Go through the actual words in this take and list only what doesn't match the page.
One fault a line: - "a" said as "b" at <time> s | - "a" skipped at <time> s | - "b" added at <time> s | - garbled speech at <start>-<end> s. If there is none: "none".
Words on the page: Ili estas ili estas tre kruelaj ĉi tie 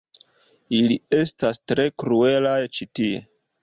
- "ili estas" skipped at 1.6 s